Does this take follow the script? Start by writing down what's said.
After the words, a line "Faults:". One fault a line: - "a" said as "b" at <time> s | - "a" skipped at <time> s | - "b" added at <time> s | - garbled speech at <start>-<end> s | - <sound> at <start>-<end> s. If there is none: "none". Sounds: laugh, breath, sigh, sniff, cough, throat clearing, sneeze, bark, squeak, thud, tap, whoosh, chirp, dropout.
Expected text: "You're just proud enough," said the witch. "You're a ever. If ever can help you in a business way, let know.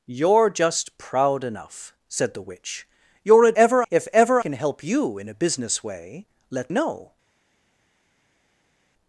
"You're just proud enough," said the witch. "You're a ever. If ever can help you in a business way, let know.
Faults:
none